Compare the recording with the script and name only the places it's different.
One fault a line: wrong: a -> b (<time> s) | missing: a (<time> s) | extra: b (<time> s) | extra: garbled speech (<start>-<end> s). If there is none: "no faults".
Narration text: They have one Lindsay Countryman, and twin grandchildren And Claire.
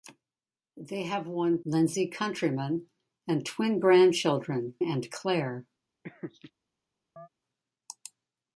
no faults